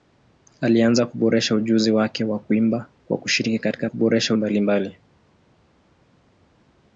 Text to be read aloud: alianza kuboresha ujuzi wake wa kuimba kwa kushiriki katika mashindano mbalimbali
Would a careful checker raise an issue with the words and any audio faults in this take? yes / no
yes